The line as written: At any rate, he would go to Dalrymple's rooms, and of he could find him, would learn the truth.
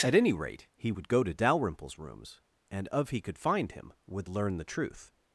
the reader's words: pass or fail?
pass